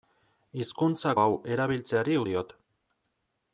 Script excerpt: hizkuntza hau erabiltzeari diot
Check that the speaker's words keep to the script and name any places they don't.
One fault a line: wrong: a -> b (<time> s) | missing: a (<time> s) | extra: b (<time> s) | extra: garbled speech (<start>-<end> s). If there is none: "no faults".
no faults